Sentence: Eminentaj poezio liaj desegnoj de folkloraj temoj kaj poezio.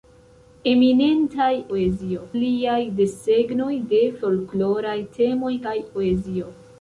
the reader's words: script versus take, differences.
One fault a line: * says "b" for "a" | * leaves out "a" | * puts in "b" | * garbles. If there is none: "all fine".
all fine